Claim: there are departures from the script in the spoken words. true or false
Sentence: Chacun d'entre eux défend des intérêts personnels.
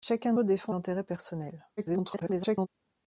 true